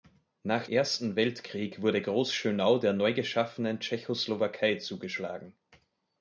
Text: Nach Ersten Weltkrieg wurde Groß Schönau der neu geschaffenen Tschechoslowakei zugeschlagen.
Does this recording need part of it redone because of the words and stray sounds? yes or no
no